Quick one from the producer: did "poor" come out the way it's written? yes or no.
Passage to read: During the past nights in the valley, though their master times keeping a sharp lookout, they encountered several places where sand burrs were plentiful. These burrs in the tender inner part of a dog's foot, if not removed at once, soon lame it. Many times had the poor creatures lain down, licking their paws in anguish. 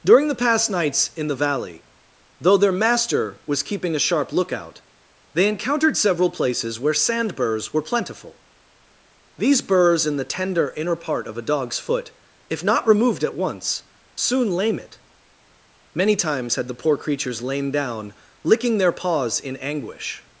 yes